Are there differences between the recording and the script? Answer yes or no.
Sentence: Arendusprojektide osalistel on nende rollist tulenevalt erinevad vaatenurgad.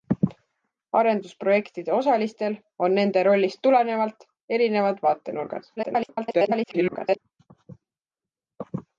yes